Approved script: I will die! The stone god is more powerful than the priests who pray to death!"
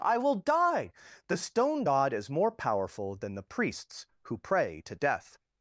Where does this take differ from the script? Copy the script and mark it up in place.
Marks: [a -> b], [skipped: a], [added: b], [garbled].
I will die! The stone god is more powerful than the priests who pray to death!"